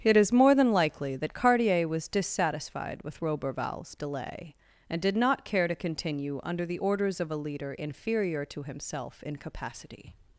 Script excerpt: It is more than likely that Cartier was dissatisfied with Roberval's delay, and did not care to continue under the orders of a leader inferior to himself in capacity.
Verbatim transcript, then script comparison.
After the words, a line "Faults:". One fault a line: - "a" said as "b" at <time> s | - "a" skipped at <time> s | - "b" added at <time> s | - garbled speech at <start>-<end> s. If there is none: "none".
It is more than likely that Cartier was dissatisfied with Roberval's delay, and did not care to continue under the orders of a leader inferior to himself in capacity.
Faults:
none